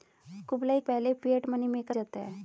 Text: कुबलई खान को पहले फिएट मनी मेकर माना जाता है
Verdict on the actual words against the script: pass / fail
fail